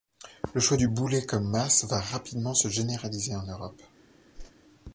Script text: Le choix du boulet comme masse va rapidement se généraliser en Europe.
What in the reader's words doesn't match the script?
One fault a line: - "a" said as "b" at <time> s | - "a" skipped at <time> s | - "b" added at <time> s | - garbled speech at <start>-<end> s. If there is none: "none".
none